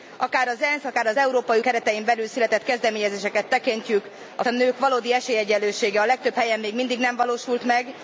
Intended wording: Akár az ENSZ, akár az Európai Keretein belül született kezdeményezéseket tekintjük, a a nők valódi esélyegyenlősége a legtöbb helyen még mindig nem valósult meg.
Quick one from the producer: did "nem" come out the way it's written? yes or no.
yes